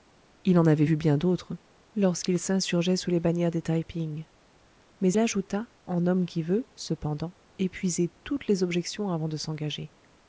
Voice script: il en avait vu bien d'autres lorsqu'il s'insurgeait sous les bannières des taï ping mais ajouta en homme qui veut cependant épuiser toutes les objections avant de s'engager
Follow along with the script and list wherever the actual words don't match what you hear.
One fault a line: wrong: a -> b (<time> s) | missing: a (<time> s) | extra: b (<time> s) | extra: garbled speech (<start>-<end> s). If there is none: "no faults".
no faults